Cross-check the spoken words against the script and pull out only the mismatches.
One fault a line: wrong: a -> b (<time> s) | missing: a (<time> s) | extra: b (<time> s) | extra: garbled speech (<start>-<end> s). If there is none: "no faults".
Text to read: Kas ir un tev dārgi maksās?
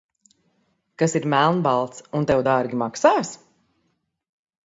extra: melnbalts (1.3 s)